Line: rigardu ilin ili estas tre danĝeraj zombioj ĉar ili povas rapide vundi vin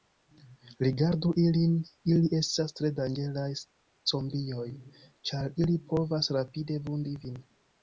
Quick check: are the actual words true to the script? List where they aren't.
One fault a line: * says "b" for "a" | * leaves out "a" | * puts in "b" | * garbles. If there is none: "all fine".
all fine